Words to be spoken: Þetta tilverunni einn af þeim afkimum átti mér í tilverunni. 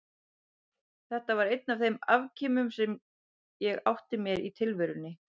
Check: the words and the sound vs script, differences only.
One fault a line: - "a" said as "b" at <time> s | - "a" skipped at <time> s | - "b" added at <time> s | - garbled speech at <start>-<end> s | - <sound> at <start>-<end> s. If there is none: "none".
- "tilverunni" said as "var" at 1.4 s
- "sem ég" added at 2.8 s